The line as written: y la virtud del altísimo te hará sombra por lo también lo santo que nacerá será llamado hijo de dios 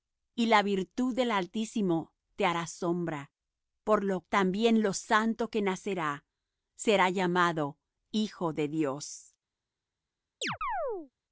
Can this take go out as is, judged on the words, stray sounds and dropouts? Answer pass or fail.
fail